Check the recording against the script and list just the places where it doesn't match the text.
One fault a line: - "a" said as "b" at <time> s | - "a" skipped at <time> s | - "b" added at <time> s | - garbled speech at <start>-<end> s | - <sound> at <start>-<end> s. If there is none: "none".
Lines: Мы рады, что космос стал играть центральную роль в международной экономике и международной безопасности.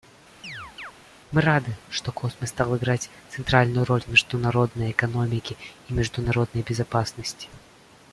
- chirp at 0.4-0.9 s